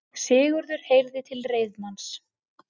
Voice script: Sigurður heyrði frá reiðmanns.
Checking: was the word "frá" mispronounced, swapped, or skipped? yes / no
yes